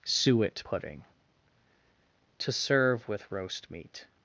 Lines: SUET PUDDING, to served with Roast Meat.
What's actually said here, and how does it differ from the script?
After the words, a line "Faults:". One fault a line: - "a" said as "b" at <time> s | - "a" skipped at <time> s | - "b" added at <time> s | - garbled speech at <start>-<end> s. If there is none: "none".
SUET PUDDING, to serve with Roast Meat.
Faults:
- "served" said as "serve" at 2.5 s